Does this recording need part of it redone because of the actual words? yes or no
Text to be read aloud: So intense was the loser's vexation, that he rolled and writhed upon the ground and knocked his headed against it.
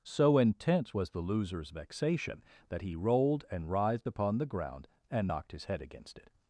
yes